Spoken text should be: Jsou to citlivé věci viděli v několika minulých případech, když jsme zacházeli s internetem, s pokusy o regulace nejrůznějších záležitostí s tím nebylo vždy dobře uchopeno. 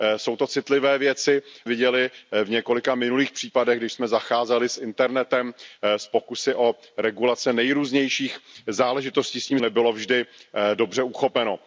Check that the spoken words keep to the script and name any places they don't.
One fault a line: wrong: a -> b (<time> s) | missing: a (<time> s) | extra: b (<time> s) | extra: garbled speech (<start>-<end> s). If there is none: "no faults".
no faults